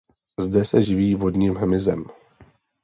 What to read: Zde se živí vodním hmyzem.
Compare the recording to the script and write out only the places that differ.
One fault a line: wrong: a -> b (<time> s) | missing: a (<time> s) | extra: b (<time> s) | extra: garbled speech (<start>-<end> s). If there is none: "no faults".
no faults